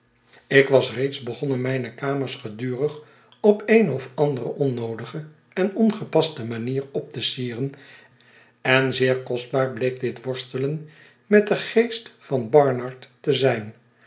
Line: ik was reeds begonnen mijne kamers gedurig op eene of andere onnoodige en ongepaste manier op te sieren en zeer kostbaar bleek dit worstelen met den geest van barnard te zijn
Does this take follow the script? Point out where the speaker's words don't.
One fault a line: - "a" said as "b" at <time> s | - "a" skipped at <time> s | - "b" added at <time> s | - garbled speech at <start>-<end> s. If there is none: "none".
none